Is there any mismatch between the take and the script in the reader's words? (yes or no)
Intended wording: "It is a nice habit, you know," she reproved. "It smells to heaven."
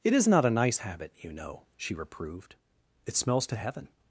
yes